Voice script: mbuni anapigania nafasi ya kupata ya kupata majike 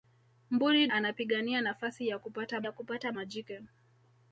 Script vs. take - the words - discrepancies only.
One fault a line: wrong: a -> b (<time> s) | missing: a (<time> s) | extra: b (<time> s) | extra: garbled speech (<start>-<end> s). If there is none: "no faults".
no faults